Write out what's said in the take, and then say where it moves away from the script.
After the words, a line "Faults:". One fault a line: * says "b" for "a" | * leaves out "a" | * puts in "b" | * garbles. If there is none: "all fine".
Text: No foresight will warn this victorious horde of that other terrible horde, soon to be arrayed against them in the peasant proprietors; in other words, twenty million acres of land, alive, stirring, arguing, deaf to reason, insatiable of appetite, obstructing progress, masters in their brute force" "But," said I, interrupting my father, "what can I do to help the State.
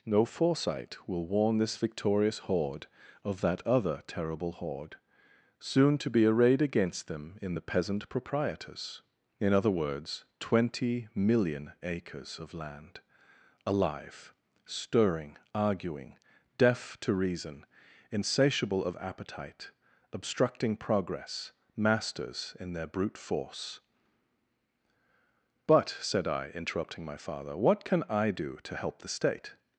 No foresight will warn this victorious horde of that other terrible horde, soon to be arrayed against them in the peasant proprietors; in other words, twenty million acres of land, alive, stirring, arguing, deaf to reason, insatiable of appetite, obstructing progress, masters in their brute force" "But," said I, interrupting my father, "what can I do to help the State.
Faults:
all fine